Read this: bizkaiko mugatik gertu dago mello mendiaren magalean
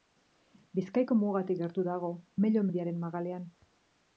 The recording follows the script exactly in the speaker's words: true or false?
true